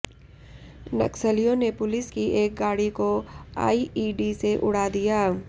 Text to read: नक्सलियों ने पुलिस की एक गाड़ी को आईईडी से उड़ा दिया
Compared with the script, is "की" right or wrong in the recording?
right